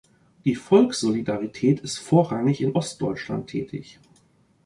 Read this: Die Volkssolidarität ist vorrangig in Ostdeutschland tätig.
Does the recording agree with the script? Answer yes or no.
yes